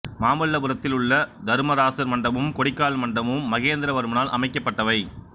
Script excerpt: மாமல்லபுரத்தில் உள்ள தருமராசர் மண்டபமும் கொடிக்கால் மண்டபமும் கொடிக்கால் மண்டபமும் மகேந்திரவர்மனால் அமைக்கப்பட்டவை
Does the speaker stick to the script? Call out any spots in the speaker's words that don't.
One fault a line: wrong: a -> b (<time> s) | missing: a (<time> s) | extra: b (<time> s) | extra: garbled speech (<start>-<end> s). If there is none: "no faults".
missing: கொடிக்கால் மண்டபமும் (3.5 s)